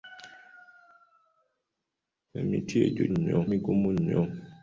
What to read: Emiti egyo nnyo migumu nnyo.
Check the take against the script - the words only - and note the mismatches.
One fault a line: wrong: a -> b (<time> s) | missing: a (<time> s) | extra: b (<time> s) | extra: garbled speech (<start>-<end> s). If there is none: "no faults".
no faults